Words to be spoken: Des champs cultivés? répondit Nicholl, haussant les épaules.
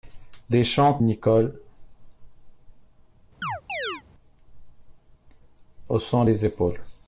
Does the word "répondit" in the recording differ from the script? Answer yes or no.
yes